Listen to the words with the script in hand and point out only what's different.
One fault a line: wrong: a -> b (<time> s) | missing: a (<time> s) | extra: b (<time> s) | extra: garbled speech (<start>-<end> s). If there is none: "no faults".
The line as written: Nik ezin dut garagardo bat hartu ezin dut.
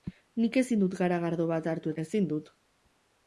no faults